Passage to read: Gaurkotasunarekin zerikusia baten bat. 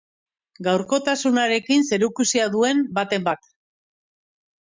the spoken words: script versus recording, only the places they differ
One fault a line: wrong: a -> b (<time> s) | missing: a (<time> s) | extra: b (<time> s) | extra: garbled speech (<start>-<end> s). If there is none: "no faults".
extra: duen (2.5 s)